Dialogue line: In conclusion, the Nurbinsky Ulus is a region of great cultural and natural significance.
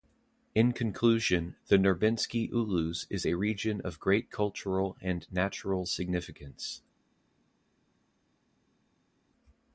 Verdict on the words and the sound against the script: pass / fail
pass